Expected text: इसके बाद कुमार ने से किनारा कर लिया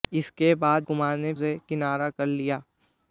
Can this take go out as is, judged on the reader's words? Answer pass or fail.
pass